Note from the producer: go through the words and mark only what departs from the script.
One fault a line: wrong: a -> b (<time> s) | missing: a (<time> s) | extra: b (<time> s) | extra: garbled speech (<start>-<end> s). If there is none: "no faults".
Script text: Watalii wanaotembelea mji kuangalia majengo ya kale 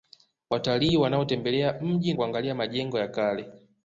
no faults